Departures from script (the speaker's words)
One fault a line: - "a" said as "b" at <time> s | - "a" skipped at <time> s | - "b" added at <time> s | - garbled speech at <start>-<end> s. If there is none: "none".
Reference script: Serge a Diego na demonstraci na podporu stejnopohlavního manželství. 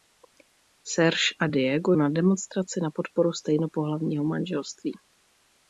none